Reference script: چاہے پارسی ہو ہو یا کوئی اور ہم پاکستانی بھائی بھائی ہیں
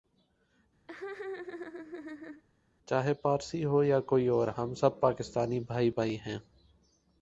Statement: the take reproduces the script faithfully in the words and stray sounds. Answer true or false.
false